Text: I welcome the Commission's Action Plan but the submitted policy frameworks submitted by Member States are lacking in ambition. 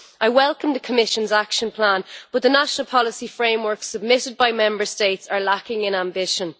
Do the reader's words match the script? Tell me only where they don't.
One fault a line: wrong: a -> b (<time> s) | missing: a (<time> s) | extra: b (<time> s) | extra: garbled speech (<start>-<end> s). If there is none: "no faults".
wrong: submitted -> national (2.5 s)